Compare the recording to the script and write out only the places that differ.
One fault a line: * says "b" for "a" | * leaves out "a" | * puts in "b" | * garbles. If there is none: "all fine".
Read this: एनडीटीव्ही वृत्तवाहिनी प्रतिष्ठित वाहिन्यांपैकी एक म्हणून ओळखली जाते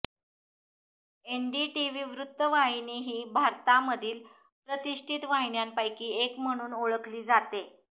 * puts in "ही भारतामधील"